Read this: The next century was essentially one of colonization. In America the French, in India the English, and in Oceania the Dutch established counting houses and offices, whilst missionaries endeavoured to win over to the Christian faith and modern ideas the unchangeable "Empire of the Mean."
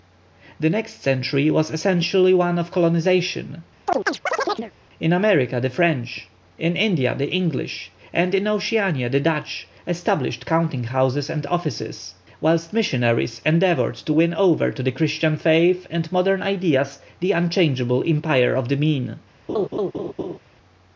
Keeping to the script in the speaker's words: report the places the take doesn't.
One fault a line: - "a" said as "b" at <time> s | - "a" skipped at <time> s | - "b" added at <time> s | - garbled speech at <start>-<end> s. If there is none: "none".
none